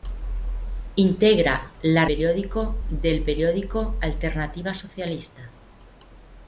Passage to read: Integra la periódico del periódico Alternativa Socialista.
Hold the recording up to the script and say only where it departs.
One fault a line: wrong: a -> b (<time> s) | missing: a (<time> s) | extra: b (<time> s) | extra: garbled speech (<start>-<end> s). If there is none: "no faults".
no faults